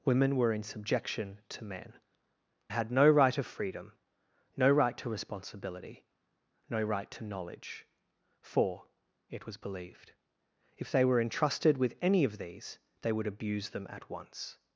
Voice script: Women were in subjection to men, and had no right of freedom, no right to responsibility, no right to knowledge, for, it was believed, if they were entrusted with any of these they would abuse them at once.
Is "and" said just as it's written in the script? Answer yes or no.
no